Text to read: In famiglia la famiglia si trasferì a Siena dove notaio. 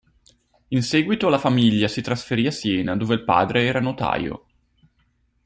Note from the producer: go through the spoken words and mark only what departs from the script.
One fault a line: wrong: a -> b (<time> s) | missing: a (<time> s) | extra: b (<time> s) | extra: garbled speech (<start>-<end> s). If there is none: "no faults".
wrong: famiglia -> seguito (0.8 s)
extra: il padre era (3.1 s)